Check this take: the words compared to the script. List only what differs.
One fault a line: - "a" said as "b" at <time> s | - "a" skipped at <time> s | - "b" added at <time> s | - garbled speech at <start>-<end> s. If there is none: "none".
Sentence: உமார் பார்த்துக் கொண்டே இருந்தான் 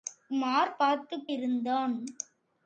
- "கொண்டே" skipped at 1.3 s